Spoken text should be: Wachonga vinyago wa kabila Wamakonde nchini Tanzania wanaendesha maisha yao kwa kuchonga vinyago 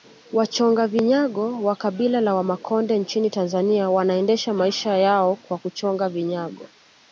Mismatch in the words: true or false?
true